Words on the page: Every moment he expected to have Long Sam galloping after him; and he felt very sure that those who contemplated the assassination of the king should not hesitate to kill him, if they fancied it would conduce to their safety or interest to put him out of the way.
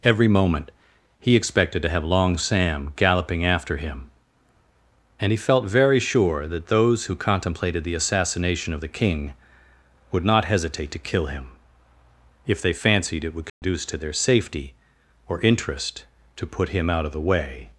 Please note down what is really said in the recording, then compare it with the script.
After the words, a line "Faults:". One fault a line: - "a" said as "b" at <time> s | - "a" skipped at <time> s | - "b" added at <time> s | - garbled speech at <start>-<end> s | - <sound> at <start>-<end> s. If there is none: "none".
Every moment he expected to have Long Sam galloping after him; and he felt very sure that those who contemplated the assassination of the king would not hesitate to kill him, if they fancied it would conduce to their safety or interest to put him out of the way.
Faults:
- "should" said as "would" at 10.1 s
- dropout at 13.5-13.6 s